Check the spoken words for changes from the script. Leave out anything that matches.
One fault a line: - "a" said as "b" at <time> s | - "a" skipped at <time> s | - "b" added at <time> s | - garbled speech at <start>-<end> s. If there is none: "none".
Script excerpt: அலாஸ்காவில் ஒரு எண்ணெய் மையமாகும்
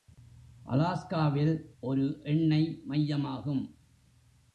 none